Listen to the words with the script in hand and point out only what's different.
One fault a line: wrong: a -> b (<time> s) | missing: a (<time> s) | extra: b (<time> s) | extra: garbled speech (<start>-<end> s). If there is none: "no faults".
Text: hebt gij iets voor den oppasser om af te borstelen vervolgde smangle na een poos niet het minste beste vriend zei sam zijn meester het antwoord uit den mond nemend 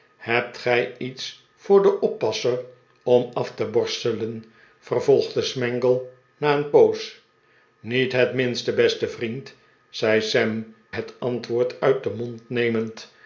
missing: zijn meester (10.7 s)